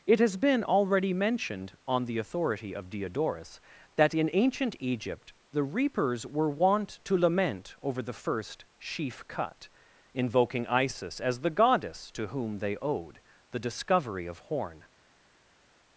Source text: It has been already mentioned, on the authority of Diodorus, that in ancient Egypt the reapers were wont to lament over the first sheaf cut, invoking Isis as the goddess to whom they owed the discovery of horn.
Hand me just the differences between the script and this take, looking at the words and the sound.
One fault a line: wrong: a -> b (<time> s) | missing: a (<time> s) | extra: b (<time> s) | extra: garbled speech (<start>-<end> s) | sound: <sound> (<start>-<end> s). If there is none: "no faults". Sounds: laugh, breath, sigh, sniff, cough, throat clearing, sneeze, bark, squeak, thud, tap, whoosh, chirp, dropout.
no faults